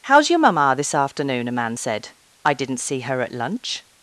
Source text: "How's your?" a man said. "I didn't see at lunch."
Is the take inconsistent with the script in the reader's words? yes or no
yes